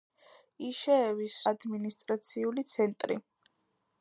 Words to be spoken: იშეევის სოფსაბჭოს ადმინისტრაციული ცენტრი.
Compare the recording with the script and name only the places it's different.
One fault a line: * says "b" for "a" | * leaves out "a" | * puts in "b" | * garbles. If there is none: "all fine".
* leaves out "სოფსაბჭოს"